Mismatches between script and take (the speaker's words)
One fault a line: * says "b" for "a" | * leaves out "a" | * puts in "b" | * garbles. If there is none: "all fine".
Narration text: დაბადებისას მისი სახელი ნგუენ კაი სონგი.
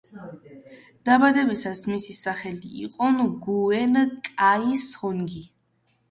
* puts in "იყო"